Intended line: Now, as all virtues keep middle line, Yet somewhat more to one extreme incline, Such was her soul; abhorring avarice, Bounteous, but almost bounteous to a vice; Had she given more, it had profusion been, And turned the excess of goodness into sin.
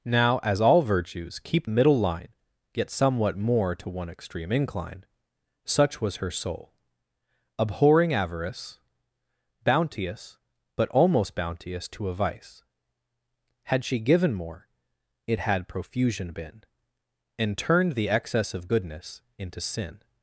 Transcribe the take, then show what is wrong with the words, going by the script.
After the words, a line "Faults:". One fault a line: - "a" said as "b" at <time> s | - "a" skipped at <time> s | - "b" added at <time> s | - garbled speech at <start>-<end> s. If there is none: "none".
Now, as all virtues keep middle line, Yet somewhat more to one extreme incline, Such was her soul; abhorring avarice, Bounteous, but almost bounteous to a vice; Had she given more, it had profusion been, And turned the excess of goodness into sin.
Faults:
none